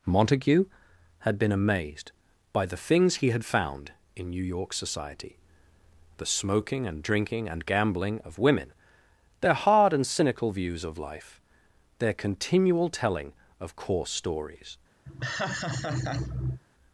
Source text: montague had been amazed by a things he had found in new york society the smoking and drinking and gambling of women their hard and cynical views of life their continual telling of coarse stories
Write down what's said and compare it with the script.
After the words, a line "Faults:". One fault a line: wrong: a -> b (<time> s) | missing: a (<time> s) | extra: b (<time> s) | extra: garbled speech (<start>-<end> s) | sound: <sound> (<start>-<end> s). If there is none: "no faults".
montague had been amazed by the things he had found in new york society the smoking and drinking and gambling of women their hard and cynical views of life their continual telling of coarse stories
Faults:
wrong: a -> the (2.6 s)
sound: laugh (15.1-16.6 s)